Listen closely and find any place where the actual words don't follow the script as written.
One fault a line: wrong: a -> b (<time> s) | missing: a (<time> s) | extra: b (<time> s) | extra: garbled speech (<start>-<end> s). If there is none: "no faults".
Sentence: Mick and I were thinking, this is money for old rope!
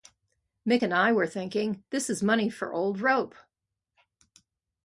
no faults